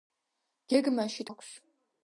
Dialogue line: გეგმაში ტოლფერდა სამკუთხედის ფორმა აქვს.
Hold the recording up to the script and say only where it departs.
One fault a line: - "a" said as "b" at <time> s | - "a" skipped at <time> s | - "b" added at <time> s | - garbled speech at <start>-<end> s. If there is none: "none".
- "ტოლფერდა სამკუთხედის ფორმა" skipped at 1.2 s